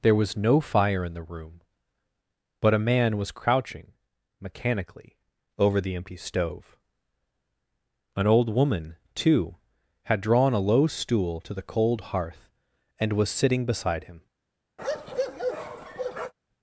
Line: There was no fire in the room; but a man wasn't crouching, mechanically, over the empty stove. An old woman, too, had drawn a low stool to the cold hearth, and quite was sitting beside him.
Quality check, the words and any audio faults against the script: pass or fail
fail